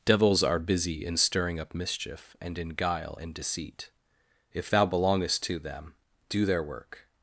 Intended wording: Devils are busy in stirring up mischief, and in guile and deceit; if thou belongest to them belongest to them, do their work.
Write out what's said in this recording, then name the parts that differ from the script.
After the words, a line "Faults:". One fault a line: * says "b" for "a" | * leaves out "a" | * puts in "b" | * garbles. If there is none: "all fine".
Devils are busy in stirring up mischief, and in guile and deceit; if thou belongest to them, do their work.
Faults:
* leaves out "belongest to them"